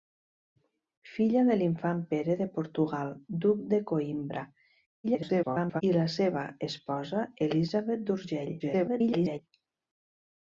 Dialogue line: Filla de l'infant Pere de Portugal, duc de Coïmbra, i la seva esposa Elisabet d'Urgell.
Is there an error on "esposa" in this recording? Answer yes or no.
no